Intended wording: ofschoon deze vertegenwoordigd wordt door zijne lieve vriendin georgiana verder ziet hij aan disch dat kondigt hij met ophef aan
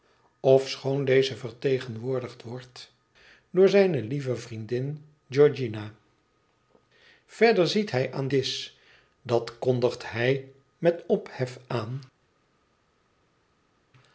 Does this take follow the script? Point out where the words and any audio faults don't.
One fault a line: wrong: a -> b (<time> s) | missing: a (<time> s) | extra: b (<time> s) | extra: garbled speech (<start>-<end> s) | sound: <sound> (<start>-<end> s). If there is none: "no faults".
no faults